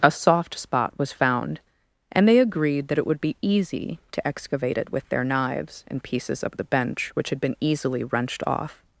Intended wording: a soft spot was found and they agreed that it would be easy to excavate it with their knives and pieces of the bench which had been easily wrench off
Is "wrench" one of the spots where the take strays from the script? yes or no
yes